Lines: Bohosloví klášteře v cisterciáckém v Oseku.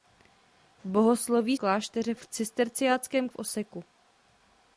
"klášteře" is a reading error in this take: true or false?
false